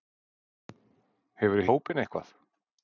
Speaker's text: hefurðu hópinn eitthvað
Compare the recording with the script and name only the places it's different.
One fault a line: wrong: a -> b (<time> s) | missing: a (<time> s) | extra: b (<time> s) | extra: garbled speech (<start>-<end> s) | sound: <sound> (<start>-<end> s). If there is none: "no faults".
no faults